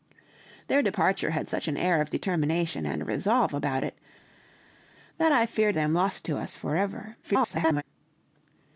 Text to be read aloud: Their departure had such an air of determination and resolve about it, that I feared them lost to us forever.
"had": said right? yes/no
yes